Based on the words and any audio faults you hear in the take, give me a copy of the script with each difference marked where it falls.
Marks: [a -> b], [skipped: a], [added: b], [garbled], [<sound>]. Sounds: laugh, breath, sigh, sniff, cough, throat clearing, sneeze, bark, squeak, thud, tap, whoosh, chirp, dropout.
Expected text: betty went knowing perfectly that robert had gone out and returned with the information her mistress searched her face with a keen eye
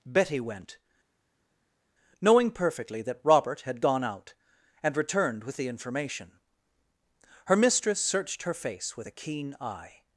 betty went knowing perfectly that robert had gone out and returned with the information her mistress searched her face with a keen eye